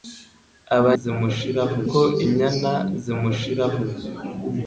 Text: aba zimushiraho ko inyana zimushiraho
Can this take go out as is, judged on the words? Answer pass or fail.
pass